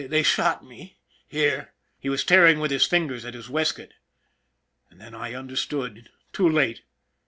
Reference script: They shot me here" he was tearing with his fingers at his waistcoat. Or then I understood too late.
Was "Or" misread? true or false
true